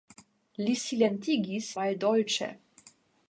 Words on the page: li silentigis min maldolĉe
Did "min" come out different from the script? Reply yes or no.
yes